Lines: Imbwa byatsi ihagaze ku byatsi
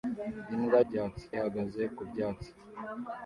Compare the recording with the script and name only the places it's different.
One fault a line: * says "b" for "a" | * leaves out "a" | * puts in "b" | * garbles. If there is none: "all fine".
all fine